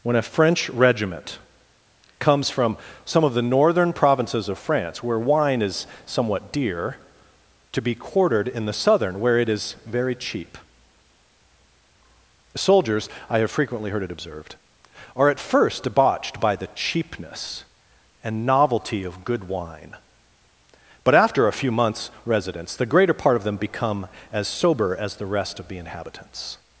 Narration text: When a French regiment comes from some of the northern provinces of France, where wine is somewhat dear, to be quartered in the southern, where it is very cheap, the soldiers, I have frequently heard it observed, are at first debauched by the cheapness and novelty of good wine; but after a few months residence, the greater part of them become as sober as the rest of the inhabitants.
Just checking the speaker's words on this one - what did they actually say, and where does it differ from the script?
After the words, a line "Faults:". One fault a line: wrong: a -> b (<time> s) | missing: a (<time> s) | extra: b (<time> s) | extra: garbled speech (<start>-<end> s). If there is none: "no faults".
When a French regiment comes from some of the northern provinces of France, where wine is somewhat dear, to be quartered in the southern, where it is very cheap, soldiers, I have frequently heard it observed, are at first debauched by the cheapness and novelty of good wine; but after a few months residence, the greater part of them become as sober as the rest of the inhabitants.
Faults:
missing: the (10.6 s)